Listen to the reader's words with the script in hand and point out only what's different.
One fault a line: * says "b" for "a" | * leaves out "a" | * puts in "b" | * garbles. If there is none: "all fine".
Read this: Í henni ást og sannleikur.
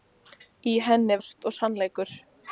all fine